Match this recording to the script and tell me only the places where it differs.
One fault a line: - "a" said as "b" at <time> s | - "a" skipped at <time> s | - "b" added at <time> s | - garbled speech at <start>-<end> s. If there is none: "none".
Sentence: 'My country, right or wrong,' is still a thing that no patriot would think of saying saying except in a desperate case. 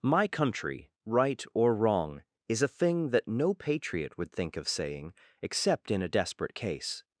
- "still" skipped at 2.6 s
- "saying" skipped at 5.1 s